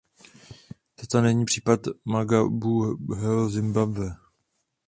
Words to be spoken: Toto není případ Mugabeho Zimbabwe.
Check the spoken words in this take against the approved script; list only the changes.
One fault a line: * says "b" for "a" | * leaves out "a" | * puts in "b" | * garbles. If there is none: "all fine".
all fine